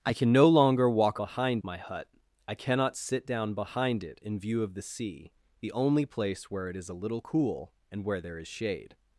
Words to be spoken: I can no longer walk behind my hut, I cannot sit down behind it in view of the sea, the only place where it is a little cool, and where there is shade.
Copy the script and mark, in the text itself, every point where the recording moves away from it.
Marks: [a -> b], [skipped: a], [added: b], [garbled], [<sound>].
I can no longer walk behind my hut, I cannot sit down behind it in view of the sea, the only place where it is a little cool, and where there is shade.